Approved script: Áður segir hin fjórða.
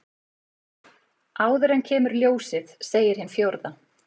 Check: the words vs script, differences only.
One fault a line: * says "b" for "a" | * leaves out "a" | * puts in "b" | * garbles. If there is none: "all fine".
* puts in "en kemur ljósið"